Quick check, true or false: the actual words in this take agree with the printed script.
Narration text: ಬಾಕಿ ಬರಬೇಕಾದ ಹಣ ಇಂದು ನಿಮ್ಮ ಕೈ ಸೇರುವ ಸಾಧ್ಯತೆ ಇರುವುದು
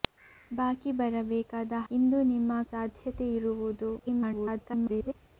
false